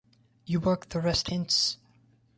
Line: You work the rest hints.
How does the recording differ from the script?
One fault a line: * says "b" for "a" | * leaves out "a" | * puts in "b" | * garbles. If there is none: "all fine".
all fine